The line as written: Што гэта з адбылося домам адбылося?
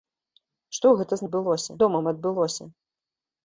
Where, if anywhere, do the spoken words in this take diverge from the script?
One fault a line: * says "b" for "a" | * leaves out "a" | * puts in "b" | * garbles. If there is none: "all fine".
all fine